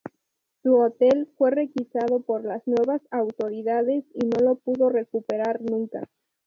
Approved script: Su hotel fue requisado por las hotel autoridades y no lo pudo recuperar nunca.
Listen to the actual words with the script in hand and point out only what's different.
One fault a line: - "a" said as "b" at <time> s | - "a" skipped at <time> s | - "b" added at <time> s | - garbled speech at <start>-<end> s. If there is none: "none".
- "hotel" said as "nuevas" at 2.6 s